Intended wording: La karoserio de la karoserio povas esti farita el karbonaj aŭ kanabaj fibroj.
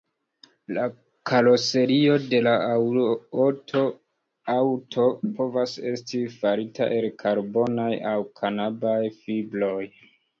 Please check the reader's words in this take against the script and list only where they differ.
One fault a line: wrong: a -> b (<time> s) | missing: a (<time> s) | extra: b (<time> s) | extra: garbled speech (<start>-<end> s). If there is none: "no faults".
wrong: karoserio -> aŭto (4.5 s)